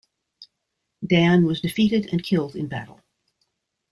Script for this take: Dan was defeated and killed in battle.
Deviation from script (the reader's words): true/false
false